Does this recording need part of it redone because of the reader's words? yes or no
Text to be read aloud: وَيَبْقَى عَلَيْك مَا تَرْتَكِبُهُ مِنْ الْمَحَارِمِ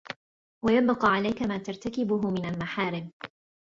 no